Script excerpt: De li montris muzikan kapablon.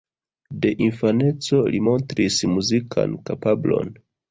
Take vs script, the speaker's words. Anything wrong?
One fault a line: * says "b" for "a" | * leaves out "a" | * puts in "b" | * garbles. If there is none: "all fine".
* puts in "infaneco"